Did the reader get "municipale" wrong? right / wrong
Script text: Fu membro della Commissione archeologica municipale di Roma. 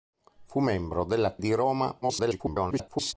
wrong